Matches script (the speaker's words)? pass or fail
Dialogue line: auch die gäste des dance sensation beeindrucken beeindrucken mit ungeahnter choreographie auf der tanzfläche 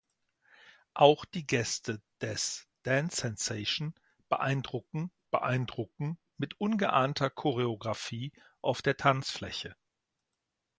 pass